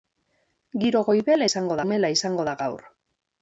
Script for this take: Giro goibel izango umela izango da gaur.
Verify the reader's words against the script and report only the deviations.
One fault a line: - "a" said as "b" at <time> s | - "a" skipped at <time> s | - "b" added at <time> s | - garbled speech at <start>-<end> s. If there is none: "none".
none